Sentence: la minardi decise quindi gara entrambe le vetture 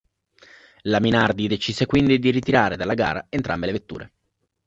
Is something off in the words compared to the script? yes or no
yes